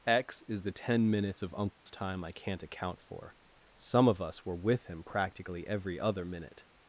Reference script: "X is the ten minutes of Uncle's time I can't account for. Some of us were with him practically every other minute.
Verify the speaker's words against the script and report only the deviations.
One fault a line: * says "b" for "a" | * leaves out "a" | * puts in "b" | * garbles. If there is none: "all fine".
all fine